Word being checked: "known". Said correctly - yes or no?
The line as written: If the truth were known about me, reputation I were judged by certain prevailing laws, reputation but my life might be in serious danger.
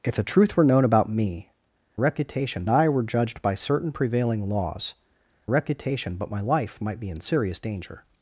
yes